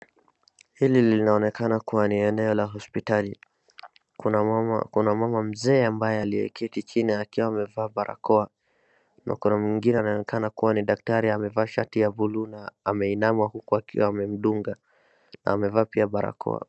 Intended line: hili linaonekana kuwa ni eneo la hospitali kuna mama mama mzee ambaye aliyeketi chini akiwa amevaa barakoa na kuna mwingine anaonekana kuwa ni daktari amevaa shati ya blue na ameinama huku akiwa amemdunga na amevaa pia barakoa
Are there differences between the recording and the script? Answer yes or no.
yes